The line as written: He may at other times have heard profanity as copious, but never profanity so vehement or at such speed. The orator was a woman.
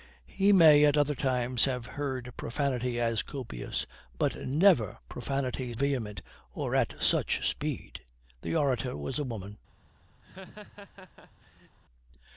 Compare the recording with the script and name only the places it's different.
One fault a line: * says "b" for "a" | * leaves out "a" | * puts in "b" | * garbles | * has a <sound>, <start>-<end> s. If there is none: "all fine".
* leaves out "so"
* has a laugh, 10.2-11.8 s